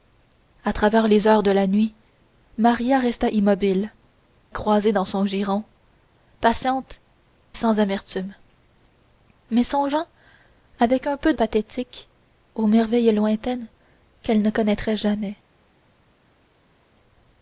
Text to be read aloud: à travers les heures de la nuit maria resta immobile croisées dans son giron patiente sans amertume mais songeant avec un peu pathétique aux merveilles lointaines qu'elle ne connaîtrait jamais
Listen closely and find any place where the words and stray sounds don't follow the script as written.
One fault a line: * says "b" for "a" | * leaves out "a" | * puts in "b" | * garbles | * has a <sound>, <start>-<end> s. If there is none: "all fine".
all fine